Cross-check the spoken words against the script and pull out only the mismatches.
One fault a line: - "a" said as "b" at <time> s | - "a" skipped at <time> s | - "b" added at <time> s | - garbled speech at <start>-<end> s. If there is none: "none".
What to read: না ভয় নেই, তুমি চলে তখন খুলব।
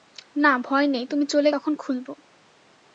none